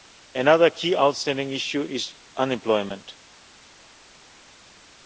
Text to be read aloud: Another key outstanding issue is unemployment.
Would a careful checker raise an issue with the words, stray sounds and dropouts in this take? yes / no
no